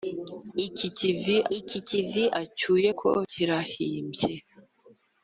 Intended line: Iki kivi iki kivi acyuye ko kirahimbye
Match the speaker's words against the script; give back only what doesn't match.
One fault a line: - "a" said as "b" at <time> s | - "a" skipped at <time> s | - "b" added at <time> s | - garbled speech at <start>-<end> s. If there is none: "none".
none